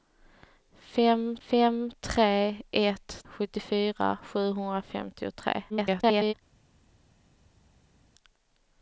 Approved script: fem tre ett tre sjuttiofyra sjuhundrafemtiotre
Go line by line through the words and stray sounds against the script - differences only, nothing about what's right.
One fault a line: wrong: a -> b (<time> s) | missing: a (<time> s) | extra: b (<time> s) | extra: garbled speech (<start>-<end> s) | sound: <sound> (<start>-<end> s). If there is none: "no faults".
extra: fem (1.5 s)
missing: tre (3.2 s)
extra: garbled speech (5.7-6.3 s)